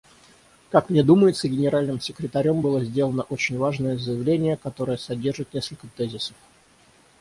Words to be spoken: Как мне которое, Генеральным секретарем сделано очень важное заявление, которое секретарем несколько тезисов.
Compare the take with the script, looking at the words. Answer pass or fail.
fail